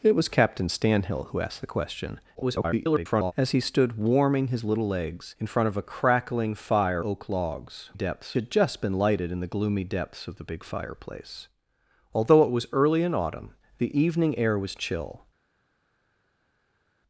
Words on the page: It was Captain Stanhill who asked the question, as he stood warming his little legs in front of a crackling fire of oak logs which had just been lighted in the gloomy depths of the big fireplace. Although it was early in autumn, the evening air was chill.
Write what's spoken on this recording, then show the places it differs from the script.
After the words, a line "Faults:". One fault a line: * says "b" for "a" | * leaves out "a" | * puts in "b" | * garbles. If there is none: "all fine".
It was Captain Stanhill who asked the question, [garbled] as he stood warming his little legs in front of a crackling fire oak logs depths had just been lighted in the gloomy depths of the big fireplace. Although it was early in autumn, the evening air was chill.
Faults:
* garbles
* leaves out "of"
* says "depths" for "which"